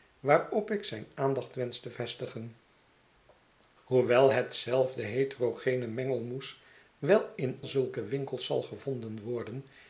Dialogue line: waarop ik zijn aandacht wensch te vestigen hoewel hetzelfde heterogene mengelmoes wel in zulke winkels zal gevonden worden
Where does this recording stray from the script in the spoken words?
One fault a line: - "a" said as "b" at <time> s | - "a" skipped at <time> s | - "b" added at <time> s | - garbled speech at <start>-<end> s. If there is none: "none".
none